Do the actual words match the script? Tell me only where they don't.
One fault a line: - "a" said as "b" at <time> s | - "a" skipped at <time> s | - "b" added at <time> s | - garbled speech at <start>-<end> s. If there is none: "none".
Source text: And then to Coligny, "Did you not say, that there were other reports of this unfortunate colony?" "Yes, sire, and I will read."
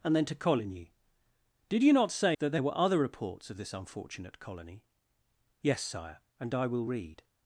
none